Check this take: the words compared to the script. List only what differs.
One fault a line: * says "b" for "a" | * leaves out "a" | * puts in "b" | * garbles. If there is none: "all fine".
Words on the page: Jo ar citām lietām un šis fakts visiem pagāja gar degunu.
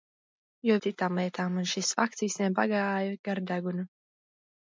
all fine